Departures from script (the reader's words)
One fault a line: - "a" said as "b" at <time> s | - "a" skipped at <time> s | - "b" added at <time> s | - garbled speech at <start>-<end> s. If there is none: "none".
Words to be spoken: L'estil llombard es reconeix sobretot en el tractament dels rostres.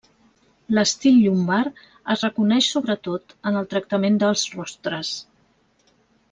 none